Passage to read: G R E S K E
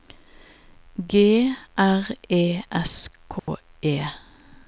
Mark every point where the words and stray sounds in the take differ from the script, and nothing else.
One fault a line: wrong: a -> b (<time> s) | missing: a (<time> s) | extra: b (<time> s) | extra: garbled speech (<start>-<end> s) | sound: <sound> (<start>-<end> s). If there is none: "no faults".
sound: dropout (3.4-3.5 s)